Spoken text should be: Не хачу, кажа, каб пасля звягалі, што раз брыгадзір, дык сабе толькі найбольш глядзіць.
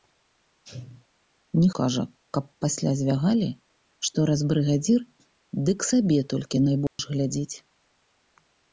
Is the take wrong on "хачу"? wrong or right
wrong